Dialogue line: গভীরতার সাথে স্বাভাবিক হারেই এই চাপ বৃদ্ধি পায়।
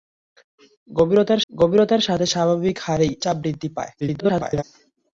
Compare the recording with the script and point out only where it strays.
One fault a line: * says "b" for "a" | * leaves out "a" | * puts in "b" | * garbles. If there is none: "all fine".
* puts in "গভীরতার"
* leaves out "এই"
* garbles